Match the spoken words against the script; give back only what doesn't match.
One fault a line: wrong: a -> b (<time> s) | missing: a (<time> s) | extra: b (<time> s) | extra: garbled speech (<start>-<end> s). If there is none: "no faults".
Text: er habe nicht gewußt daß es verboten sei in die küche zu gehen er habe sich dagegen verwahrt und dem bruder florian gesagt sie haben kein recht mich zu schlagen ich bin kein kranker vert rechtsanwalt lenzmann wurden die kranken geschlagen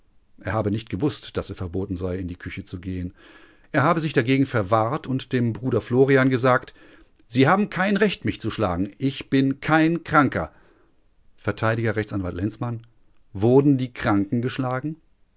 no faults